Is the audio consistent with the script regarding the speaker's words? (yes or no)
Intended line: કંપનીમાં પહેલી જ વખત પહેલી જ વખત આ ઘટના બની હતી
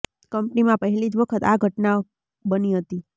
no